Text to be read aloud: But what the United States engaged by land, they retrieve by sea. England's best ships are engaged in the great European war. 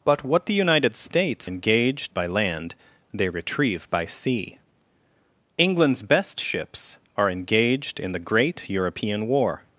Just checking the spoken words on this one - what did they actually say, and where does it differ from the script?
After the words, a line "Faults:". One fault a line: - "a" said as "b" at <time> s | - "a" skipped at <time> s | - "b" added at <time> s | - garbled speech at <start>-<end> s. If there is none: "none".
But what the United States engaged by land, they retrieve by sea. England's best ships are engaged in the great European war.
Faults:
none